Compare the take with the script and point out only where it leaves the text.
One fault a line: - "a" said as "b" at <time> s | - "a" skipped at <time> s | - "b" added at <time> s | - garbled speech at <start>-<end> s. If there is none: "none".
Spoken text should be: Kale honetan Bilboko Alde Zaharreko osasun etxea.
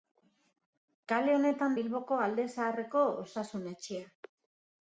none